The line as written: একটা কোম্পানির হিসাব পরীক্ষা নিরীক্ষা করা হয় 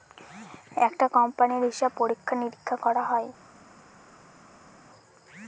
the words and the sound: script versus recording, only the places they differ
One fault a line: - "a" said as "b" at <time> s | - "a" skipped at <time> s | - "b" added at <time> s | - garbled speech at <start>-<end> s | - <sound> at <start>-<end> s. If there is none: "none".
none